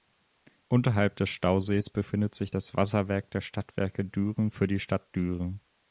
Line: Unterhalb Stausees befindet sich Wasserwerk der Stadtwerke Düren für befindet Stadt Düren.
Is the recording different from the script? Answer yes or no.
yes